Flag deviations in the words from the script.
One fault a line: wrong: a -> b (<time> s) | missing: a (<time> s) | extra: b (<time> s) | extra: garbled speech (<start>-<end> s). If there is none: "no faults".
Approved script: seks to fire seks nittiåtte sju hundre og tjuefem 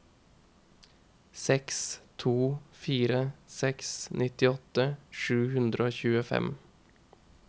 no faults